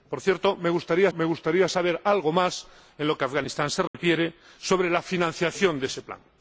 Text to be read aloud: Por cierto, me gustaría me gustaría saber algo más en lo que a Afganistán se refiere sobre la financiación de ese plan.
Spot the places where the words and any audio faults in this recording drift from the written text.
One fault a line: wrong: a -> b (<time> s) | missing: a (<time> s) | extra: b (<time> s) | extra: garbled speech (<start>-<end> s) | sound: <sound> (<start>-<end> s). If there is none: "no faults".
sound: dropout (3.9-3.9 s)